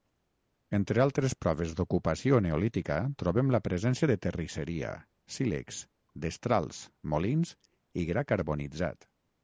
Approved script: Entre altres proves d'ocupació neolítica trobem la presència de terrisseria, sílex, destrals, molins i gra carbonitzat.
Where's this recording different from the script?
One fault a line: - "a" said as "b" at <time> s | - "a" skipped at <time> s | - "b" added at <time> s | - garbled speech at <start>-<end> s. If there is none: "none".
none